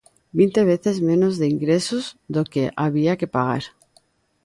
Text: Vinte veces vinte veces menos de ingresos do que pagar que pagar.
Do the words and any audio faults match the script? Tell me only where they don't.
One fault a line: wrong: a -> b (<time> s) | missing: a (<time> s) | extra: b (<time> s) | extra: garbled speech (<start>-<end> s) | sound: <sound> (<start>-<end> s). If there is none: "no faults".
missing: vinte veces (1.0 s)
wrong: pagar -> había (2.8 s)